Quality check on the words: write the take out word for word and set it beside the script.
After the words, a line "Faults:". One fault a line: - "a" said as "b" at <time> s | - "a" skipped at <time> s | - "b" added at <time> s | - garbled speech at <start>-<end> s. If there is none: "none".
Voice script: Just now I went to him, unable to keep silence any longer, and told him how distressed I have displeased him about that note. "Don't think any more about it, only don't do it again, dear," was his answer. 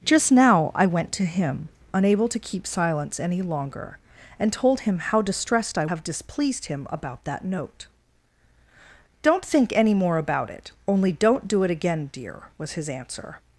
Just now I went to him, unable to keep silence any longer, and told him how distressed I have displeased him about that note. "Don't think any more about it, only don't do it again, dear," was his answer.
Faults:
none